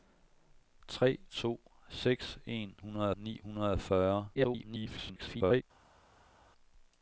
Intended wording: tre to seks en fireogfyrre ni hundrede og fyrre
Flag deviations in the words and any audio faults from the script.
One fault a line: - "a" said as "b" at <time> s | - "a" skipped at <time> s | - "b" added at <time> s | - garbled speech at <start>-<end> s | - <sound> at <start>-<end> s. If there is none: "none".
- "fireogfyrre" said as "hundrede" at 2.8 s
- garbled speech at 4.3-5.6 s